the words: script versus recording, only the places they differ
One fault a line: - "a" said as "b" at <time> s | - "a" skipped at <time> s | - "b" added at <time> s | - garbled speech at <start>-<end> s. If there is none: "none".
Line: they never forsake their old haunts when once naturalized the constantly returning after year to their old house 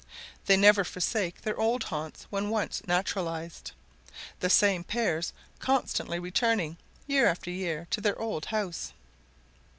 - "same pairs" added at 4.5 s
- "year" added at 7.0 s